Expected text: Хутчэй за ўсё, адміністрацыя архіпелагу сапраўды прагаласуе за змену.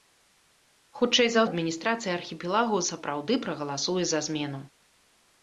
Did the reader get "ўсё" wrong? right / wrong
wrong